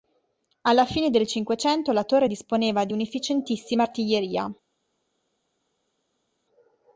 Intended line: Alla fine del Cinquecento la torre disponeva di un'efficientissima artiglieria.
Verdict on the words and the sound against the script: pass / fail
pass